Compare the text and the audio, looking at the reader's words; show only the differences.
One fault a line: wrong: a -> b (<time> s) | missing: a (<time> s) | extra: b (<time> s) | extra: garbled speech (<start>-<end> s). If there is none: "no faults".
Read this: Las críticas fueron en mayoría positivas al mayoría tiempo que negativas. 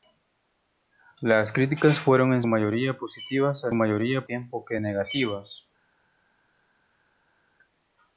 no faults